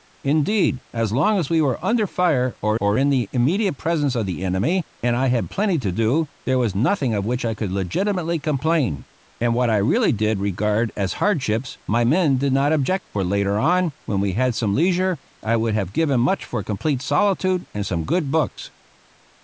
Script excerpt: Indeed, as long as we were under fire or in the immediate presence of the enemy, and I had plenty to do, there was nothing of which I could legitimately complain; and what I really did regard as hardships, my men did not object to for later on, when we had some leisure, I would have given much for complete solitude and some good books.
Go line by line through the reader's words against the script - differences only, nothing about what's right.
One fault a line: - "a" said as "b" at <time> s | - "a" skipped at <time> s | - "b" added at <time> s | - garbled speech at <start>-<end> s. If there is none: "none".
- "or" added at 2.8 s
- "to" skipped at 13.1 s